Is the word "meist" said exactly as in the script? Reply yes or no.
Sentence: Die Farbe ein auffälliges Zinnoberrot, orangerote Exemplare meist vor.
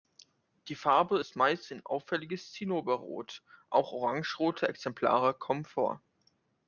no